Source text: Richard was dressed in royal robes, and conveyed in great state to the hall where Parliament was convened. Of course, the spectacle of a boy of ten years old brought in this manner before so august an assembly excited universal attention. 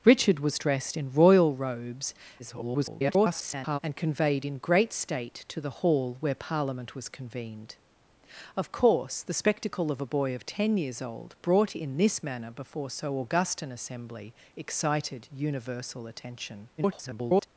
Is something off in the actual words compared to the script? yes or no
yes